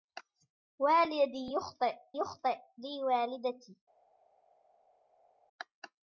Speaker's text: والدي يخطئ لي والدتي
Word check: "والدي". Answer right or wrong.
right